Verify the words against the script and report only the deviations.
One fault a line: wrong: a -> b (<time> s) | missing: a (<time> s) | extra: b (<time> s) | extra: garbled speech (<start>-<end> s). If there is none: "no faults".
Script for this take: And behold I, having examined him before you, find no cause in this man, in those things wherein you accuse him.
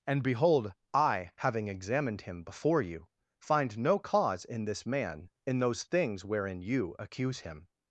no faults